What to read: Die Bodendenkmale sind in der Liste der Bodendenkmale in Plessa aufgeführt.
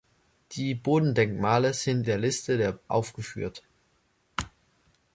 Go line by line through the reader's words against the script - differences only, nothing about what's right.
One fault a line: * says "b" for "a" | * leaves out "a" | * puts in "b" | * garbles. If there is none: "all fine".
* leaves out "in"
* leaves out "Bodendenkmale in Plessa"